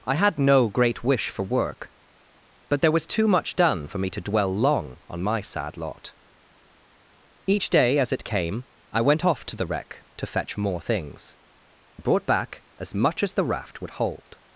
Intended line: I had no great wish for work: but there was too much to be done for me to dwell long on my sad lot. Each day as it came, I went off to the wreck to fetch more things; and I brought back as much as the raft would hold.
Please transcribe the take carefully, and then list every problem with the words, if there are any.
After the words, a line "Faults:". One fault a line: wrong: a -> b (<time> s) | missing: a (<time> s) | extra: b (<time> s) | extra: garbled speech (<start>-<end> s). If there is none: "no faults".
I had no great wish for work: but there was too much done for me to dwell long on my sad lot. Each day as it came, I went off to the wreck to fetch more things; I brought back as much as the raft would hold.
Faults:
missing: to be (3.5 s)
missing: and (11.4 s)